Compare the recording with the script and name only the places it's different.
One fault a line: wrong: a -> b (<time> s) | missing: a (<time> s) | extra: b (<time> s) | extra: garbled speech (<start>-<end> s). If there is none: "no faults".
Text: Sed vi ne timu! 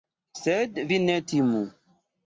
no faults